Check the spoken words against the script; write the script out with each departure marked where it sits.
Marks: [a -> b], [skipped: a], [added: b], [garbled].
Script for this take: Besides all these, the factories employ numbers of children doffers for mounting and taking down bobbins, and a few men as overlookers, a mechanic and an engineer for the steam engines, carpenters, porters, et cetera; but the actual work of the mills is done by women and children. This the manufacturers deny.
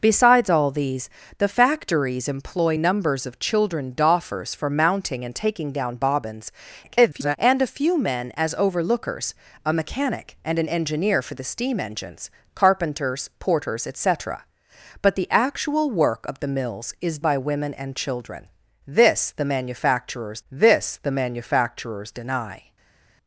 Besides all these, the factories employ numbers of children doffers for mounting and taking down bobbins, [garbled] and a few men as overlookers, a mechanic and an engineer for the steam engines, carpenters, porters, et cetera; but the actual work of the mills is [skipped: done] by women and children. This the manufacturers [added: this the manufacturers] deny.